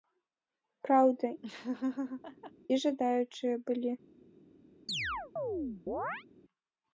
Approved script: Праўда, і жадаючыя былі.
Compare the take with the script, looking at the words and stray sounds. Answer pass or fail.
fail